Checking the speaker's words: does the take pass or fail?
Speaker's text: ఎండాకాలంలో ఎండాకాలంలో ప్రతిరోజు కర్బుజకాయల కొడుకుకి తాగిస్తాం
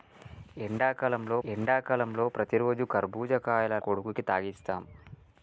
pass